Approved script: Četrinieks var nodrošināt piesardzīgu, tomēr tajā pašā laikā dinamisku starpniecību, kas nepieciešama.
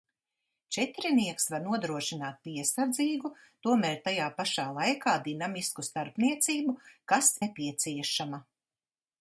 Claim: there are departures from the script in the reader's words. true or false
false